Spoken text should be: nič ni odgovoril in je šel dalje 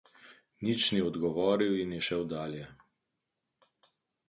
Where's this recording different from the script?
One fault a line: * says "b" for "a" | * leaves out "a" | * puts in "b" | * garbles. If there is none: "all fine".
all fine